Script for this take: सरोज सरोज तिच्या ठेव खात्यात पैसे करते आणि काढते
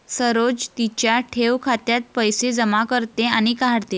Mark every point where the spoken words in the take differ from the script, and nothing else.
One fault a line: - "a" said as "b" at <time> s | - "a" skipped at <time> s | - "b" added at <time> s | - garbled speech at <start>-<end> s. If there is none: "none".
- "सरोज" skipped at 0.7 s
- "जमा" added at 2.5 s